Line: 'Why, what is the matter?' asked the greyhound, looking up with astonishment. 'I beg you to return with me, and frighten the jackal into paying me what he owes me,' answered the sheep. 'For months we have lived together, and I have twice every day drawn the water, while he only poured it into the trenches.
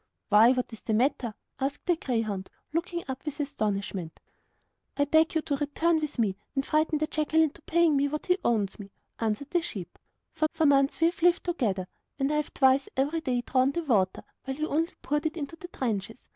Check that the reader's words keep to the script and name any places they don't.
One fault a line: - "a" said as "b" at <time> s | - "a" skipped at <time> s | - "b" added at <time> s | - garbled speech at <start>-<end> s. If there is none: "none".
- "for" added at 10.5 s